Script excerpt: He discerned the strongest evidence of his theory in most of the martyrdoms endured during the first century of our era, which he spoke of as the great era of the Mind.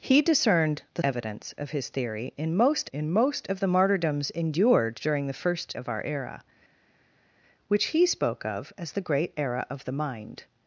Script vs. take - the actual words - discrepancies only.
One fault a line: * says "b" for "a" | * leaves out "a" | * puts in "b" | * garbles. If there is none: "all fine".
* leaves out "strongest"
* puts in "in most"
* leaves out "century"